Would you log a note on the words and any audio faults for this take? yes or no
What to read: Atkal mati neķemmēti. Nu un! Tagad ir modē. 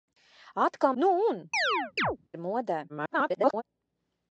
yes